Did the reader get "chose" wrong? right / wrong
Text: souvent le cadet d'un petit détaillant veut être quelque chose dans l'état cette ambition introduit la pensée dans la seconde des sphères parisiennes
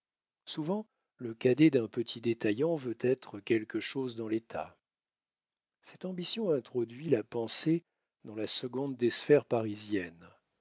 right